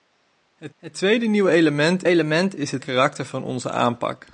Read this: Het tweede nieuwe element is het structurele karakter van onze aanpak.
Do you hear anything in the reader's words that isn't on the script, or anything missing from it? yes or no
yes